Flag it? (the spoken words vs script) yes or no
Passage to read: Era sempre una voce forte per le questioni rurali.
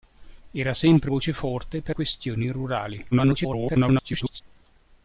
yes